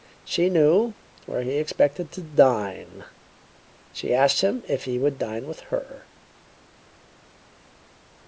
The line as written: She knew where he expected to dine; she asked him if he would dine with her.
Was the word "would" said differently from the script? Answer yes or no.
no